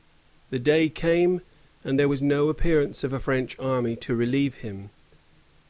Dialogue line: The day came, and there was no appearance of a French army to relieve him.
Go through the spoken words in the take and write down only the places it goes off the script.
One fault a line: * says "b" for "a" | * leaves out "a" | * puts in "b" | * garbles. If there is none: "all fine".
all fine